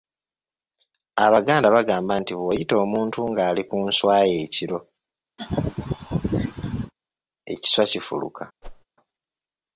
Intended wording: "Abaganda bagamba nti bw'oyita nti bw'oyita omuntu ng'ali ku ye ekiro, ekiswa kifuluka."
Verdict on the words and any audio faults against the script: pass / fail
fail